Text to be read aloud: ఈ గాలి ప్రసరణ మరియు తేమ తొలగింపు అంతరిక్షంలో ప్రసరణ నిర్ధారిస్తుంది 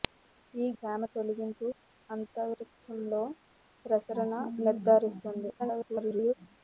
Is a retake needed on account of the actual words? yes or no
yes